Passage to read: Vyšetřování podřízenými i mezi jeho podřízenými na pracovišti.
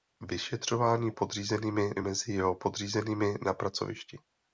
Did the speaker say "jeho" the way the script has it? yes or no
yes